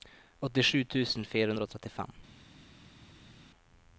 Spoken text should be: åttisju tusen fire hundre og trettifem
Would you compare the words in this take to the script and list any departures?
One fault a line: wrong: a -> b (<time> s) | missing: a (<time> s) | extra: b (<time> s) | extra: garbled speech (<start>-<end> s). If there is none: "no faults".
no faults